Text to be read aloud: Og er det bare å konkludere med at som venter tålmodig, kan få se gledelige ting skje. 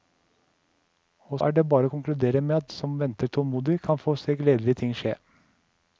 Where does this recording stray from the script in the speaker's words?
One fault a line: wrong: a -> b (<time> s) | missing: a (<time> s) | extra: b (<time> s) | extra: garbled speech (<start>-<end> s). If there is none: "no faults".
no faults